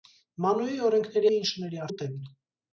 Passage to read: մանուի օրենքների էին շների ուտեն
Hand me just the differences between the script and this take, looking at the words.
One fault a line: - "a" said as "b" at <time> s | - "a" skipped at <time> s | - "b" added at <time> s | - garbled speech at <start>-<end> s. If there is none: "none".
none